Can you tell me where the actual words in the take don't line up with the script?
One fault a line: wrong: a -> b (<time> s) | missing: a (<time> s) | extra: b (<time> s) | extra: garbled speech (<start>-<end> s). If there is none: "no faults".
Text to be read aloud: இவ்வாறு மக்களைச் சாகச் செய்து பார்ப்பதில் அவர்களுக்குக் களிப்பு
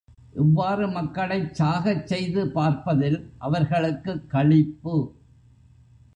no faults